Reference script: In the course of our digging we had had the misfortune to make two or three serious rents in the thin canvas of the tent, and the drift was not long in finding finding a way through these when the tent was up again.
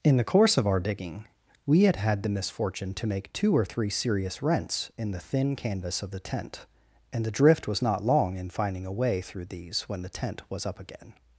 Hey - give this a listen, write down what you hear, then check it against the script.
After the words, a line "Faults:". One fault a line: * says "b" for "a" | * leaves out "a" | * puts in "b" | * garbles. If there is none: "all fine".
In the course of our digging we had had the misfortune to make two or three serious rents in the thin canvas of the tent, and the drift was not long in finding a way through these when the tent was up again.
Faults:
* leaves out "finding"